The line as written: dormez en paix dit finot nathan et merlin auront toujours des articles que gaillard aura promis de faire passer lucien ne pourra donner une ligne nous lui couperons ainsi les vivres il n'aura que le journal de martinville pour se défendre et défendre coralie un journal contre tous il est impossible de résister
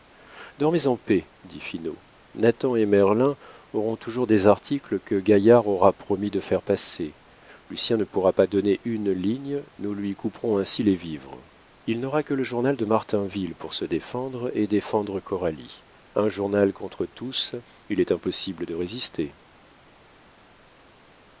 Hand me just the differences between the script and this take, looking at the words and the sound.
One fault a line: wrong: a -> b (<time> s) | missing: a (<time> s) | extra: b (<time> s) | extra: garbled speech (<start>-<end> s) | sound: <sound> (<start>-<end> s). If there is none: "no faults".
extra: pas (8.3 s)